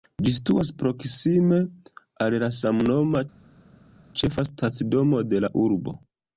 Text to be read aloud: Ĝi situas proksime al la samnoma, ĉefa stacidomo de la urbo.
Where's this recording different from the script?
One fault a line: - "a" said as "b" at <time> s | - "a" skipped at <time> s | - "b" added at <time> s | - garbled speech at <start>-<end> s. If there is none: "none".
none